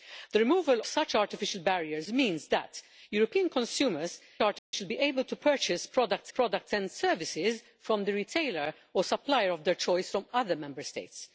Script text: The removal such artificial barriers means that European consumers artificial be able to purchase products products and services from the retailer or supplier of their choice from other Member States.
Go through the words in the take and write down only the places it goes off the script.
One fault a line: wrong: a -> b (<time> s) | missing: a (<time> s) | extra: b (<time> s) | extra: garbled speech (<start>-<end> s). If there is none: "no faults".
no faults